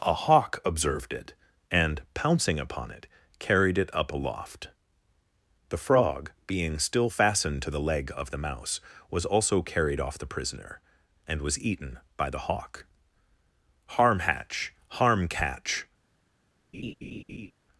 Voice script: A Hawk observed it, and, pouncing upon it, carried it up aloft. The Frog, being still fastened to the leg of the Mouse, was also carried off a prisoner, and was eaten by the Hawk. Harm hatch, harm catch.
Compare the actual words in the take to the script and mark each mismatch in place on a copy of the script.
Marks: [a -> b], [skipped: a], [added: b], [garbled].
A Hawk observed it, and, pouncing upon it, carried it up aloft. The Frog, being still fastened to the leg of the Mouse, was also carried off [a -> the] prisoner, and was eaten by the Hawk. Harm hatch, harm catch.